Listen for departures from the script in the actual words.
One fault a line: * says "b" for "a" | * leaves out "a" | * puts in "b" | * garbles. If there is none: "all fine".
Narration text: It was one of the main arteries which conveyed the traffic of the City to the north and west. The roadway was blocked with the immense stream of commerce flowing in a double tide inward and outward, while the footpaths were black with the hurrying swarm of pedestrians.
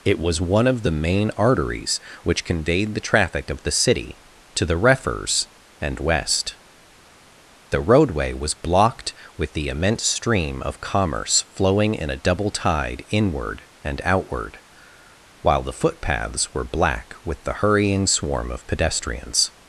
* says "refers" for "north"